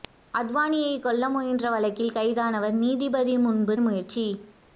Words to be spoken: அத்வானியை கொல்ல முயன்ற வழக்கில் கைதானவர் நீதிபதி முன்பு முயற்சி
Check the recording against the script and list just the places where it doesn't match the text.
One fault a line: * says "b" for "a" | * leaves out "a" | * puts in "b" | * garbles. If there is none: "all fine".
all fine